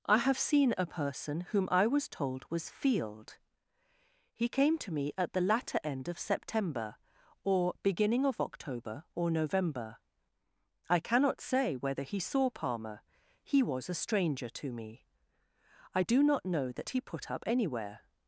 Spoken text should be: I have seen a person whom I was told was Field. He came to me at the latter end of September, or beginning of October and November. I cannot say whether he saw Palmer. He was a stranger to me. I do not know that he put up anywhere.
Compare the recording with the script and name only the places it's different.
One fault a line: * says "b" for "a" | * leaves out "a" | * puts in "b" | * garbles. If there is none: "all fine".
* says "or" for "and"